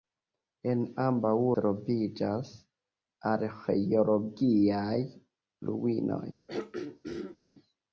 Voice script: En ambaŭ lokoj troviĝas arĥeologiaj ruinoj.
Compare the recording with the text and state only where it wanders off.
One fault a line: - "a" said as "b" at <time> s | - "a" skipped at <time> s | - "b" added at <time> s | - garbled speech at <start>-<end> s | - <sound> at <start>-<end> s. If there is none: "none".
- "lokoj" skipped at 1.3 s
- throat clearing at 6.5-7.4 s